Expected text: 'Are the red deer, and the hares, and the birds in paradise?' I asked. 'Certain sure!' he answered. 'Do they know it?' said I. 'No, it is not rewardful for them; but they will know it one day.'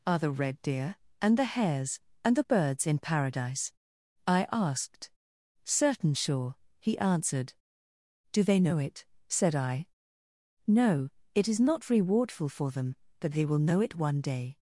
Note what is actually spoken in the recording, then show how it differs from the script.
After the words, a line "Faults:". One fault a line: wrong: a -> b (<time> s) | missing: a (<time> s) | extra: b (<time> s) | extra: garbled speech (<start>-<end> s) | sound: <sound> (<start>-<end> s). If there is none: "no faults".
'Are the red deer, and the hares, and the birds in paradise?' I asked. 'Certain sure!' he answered. 'Do they know it?' said I. 'No, it is not rewardful for them; but they will know it one day.'
Faults:
no faults